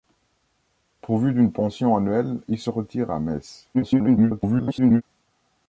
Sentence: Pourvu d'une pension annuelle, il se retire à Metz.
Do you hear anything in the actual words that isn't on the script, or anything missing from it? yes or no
yes